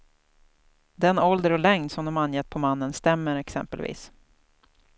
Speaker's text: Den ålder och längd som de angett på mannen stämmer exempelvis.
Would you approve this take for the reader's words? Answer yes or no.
yes